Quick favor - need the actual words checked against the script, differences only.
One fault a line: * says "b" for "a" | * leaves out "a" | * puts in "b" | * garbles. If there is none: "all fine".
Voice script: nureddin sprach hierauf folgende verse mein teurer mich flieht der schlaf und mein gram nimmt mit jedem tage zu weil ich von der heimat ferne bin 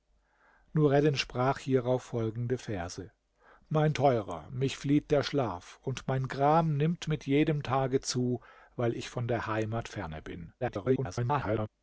* garbles